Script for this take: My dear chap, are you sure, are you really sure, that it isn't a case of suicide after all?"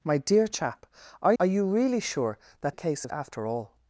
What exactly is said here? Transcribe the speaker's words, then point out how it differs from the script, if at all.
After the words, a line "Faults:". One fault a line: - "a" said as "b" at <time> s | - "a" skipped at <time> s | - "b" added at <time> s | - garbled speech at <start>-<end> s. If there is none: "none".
My dear chap, are are you really sure, that a case of after all?"
Faults:
- "you sure" skipped at 1.3 s
- "it isn't" skipped at 2.8 s
- "suicide" skipped at 3.1 s